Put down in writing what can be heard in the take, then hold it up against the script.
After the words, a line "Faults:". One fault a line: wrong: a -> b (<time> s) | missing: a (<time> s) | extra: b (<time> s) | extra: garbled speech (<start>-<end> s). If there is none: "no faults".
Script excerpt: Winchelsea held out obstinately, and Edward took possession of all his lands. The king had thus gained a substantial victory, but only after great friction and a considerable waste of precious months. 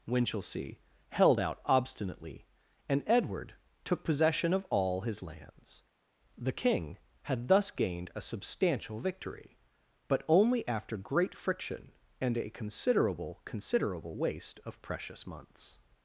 Winchelsea held out obstinately, and Edward took possession of all his lands. The king had thus gained a substantial victory, but only after great friction and a considerable considerable waste of precious months.
Faults:
extra: considerable (13.4 s)